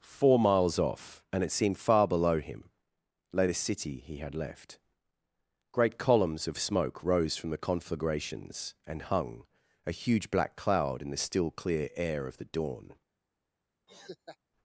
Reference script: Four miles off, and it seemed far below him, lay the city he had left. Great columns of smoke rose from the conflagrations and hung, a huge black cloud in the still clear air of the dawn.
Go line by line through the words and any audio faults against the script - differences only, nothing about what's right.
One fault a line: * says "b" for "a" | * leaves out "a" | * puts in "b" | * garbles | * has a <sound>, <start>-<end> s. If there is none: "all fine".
* has a laugh, 13.9-14.4 s